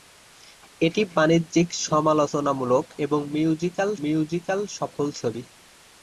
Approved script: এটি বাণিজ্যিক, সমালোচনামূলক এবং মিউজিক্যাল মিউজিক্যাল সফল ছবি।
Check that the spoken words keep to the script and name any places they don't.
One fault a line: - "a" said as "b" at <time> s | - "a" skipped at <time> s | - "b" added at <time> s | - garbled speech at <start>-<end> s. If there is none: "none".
none